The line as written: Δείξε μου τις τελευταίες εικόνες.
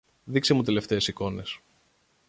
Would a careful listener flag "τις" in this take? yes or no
yes